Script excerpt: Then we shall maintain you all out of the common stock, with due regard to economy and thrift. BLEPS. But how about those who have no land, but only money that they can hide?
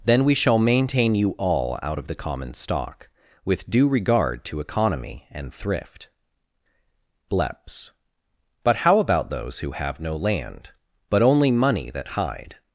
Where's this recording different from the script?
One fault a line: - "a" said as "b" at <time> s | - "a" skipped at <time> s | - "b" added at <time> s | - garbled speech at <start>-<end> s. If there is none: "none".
- "they can" skipped at 12.1 s